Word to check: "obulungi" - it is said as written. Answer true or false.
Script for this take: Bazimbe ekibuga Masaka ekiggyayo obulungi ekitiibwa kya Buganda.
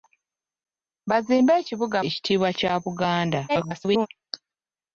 false